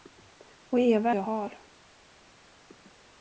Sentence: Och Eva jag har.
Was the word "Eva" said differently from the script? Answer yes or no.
no